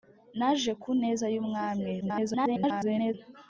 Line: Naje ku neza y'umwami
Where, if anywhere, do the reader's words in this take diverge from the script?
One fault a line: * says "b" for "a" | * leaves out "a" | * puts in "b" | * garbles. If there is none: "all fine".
* garbles